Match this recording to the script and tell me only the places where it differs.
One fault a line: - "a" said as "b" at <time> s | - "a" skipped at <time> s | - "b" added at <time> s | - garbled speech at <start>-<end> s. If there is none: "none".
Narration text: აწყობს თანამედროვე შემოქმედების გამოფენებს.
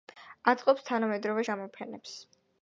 - "შემოქმედების" skipped at 1.4 s